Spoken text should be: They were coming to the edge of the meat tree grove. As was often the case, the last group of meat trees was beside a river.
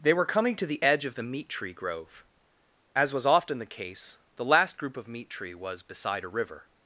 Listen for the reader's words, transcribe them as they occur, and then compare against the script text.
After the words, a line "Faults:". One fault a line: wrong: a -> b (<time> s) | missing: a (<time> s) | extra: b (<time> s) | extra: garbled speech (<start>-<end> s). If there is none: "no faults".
They were coming to the edge of the meat tree grove. As was often the case, the last group of meat tree was beside a river.
Faults:
wrong: trees -> tree (5.3 s)